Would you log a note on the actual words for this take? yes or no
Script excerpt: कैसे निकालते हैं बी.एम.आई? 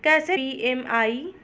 yes